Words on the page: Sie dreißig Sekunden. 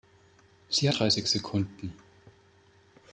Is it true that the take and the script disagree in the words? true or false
false